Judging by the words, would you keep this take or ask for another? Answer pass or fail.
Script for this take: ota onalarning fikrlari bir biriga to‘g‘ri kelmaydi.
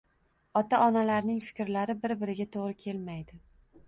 pass